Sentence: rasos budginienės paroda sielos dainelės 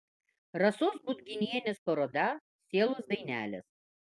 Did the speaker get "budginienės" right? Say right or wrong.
right